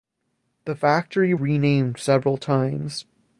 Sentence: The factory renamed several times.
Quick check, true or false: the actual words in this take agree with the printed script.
true